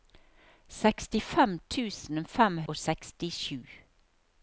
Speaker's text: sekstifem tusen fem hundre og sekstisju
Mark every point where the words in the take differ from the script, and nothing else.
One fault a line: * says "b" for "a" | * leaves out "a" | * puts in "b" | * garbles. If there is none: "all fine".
* leaves out "hundre"